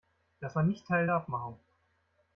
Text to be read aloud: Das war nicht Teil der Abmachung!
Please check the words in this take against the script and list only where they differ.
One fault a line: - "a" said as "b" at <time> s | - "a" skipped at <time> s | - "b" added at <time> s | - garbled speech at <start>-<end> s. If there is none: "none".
none